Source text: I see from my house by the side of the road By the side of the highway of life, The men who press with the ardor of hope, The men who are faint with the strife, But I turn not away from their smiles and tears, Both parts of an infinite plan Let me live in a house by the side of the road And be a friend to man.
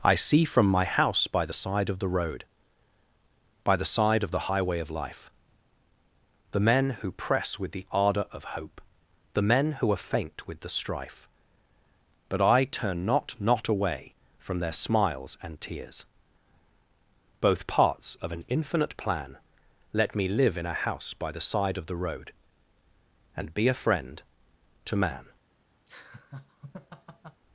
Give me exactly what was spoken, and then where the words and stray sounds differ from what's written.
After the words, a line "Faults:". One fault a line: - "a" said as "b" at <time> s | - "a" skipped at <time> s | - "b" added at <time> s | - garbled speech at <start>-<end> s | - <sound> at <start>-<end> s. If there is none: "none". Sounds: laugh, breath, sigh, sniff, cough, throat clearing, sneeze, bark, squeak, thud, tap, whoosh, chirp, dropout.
I see from my house by the side of the road By the side of the highway of life, The men who press with the ardor of hope, The men who are faint with the strife, But I turn not not away from their smiles and tears, Both parts of an infinite plan Let me live in a house by the side of the road And be a friend to man.
Faults:
- "not" added at 13.4 s
- laugh at 25.9-27.4 s